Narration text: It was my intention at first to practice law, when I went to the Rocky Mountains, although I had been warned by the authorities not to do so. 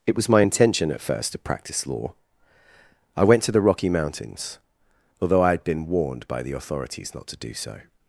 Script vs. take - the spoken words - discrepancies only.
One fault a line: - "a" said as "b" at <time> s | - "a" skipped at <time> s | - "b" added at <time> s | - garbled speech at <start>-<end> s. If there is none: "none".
- "when" skipped at 2.1 s